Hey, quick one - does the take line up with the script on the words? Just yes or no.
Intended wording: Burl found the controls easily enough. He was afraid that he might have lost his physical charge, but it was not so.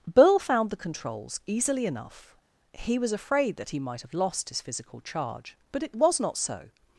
yes